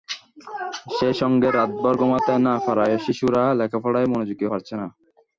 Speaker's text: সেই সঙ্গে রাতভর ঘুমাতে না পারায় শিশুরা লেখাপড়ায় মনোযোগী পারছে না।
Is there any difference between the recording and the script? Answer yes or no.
no